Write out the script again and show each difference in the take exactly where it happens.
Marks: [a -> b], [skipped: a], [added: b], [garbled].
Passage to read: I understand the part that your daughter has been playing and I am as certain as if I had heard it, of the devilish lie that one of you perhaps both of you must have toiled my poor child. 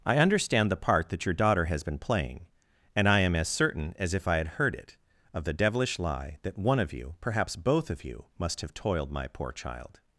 I understand the part that your daughter has been playing and I am as certain as if I had heard it, of the devilish lie that one of you perhaps both of you must have toiled my poor child.